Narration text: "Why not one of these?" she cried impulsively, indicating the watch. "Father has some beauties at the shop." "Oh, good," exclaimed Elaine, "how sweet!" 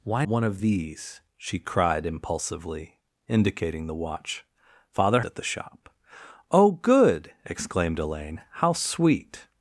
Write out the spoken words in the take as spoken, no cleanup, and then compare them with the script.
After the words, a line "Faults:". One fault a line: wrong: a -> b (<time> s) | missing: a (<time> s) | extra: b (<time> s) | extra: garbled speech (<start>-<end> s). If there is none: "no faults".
"Why one of these?" she cried impulsively, indicating the watch. "Father at the shop." "Oh, good," exclaimed Elaine, "how sweet!"
Faults:
missing: not (0.2 s)
missing: has some beauties (5.2 s)